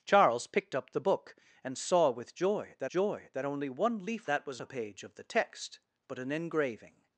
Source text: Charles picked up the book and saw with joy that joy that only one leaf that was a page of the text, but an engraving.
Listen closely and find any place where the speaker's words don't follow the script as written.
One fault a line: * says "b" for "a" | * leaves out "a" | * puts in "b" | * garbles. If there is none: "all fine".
all fine